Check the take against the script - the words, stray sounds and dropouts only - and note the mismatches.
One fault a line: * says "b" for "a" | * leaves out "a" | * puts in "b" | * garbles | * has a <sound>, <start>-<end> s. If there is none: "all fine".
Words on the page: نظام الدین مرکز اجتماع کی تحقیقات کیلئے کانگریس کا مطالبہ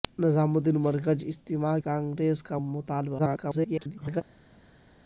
* leaves out "کی تحقیقات کیلئے"
* garbles